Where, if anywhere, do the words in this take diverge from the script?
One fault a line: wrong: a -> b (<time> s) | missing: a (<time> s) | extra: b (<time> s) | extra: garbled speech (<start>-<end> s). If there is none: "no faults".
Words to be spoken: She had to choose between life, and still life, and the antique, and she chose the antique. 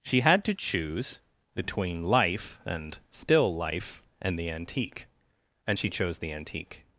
no faults